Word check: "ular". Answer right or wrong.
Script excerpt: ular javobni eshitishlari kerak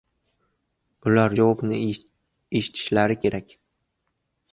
right